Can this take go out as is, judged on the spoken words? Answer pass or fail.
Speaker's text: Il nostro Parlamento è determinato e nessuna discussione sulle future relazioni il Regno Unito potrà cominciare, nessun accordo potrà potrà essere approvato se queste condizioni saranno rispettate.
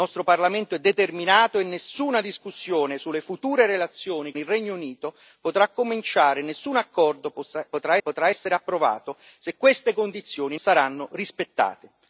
pass